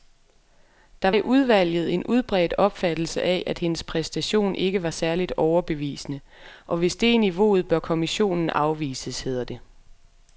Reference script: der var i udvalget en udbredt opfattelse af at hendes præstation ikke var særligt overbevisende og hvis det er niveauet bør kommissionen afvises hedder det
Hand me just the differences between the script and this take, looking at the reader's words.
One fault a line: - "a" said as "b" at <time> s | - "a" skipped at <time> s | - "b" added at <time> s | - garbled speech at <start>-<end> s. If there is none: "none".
- "var" skipped at 1.1 s